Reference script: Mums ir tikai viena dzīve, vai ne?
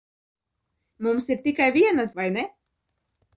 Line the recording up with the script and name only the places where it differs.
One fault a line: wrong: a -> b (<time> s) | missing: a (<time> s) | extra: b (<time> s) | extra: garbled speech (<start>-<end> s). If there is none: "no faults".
missing: dzīve (2.0 s)